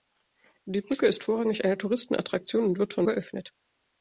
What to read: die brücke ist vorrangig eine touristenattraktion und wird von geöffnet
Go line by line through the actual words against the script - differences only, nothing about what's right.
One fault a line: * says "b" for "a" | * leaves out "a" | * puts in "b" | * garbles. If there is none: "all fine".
all fine